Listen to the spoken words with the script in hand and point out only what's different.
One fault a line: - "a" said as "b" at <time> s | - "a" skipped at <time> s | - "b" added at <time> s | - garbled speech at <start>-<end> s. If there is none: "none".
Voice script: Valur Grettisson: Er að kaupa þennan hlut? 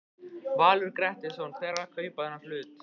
- "Hver" added at 1.6 s